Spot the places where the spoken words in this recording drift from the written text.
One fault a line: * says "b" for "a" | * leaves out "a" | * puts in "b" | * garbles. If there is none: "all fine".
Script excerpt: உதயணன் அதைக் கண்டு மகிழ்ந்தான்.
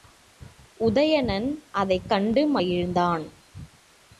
all fine